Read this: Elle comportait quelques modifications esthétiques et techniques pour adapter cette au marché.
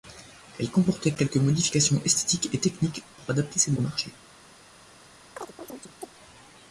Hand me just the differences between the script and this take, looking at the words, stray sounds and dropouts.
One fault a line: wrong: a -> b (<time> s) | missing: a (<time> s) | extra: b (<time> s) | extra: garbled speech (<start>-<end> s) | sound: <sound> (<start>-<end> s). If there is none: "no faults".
sound: chirp (5.4-6.1 s)